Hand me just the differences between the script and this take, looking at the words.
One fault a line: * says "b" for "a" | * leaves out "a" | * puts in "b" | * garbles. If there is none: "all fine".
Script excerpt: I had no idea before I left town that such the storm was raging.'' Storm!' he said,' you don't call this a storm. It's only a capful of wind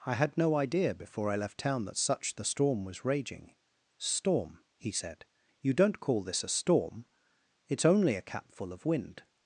all fine